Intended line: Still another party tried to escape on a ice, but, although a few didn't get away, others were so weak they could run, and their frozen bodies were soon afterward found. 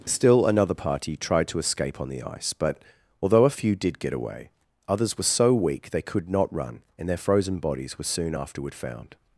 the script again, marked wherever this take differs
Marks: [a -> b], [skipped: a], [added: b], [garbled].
Still another party tried to escape on [a -> the] ice, but, although a few [didn't -> did] get away, others were so weak they could [added: not] run, and their frozen bodies were soon afterward found.